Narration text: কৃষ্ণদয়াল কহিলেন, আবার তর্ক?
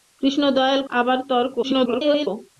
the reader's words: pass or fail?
fail